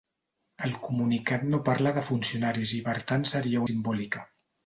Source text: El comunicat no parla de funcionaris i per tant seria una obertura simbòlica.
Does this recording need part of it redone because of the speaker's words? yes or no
yes